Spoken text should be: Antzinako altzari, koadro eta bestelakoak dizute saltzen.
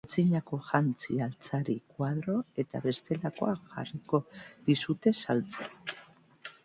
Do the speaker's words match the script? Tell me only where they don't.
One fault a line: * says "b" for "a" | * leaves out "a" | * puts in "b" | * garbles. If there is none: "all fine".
* puts in "jantzi"
* puts in "jarriko"